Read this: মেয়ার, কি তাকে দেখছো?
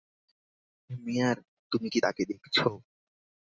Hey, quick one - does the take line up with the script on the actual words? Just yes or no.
no